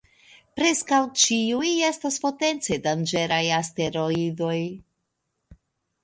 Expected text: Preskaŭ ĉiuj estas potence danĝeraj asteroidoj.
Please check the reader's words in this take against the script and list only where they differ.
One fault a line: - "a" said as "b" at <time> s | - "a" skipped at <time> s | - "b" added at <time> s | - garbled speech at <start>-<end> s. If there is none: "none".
none